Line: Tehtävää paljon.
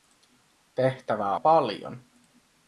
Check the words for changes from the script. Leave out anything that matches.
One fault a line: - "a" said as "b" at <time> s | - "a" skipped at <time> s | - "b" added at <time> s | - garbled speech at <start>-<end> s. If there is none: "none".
none